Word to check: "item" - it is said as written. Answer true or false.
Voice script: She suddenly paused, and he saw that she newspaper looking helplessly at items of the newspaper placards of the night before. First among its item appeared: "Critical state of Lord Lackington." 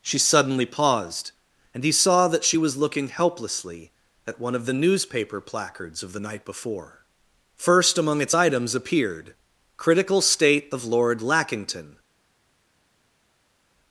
false